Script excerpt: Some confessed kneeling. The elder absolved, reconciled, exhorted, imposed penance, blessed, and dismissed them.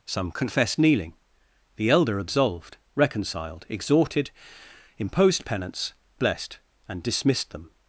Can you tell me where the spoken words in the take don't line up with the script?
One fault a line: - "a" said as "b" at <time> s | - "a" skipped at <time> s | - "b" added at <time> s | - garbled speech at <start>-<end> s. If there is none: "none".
none